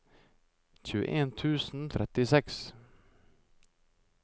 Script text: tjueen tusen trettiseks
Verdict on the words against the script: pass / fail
pass